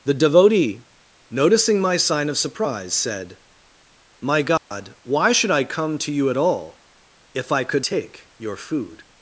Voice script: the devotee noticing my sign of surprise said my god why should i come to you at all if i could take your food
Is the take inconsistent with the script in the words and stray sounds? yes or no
yes